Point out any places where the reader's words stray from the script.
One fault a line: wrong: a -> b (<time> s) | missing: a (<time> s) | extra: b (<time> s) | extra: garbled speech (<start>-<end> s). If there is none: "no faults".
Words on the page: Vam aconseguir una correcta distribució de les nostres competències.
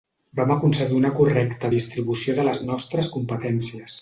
no faults